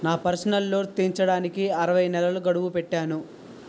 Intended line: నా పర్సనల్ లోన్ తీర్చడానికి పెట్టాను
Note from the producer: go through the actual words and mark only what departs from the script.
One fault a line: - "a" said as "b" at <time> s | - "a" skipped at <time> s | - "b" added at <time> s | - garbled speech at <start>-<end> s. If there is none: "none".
- "అరవై నెలల గడువు" added at 1.8 s